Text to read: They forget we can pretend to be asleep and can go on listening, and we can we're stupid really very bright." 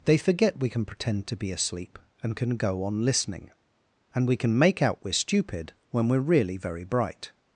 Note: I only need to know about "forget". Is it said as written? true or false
true